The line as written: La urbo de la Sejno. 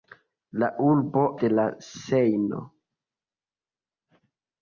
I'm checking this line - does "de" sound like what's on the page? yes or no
yes